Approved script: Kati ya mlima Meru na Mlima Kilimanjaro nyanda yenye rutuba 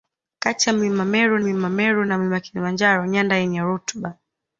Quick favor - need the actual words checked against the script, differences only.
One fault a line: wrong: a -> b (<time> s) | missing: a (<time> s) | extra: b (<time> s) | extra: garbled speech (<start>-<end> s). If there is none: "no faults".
extra: mlima Meru (1.4 s)